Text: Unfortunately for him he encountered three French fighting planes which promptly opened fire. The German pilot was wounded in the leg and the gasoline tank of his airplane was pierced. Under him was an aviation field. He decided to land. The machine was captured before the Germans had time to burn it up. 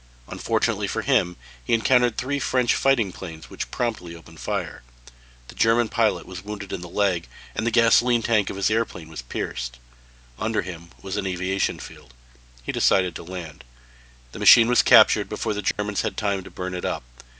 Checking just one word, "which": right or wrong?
right